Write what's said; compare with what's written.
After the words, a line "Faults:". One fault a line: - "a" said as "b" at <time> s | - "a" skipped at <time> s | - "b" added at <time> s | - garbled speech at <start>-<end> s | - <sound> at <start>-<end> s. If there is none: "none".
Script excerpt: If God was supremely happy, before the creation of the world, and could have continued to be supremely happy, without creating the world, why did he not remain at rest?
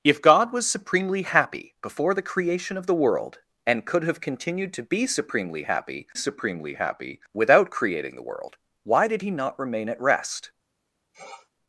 If God was supremely happy, before the creation of the world, and could have continued to be supremely happy supremely happy, without creating the world, why did he not remain at rest?
Faults:
- "supremely happy" added at 6.1 s
- sniff at 11.1-11.5 s